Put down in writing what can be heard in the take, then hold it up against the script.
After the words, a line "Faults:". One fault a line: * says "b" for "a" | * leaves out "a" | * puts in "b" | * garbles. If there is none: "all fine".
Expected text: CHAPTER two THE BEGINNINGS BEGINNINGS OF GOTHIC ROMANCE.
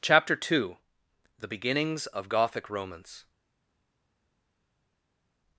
CHAPTER two THE BEGINNINGS OF GOTHIC ROMANCE.
Faults:
* leaves out "BEGINNINGS"